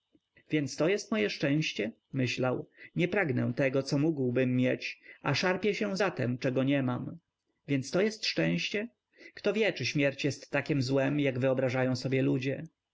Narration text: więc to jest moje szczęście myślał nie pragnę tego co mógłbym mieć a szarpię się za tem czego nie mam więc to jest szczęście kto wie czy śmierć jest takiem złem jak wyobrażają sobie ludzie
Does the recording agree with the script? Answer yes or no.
yes